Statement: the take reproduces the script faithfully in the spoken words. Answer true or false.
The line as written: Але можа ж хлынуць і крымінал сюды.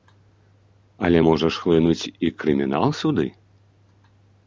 true